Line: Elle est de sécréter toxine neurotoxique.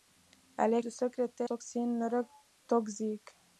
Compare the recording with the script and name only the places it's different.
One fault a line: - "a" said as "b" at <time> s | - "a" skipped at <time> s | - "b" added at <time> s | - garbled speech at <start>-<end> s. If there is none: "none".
none